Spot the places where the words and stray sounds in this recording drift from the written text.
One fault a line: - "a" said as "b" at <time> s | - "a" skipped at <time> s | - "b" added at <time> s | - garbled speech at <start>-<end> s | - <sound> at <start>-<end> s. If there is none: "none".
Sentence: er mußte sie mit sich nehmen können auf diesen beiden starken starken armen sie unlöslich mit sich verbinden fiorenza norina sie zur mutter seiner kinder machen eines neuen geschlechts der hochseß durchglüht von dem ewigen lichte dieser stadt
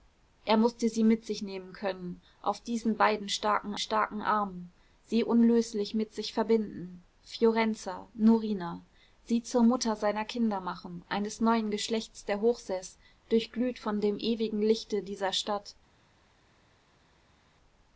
none